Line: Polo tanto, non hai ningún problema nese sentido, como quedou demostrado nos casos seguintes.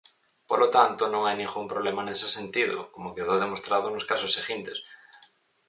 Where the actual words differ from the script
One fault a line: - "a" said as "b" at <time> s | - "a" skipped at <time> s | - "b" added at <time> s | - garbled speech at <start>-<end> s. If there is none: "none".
none